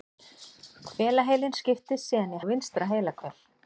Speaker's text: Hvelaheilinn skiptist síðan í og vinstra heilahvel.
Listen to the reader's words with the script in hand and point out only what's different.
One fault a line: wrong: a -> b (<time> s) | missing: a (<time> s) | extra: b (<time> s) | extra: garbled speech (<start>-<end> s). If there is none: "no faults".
no faults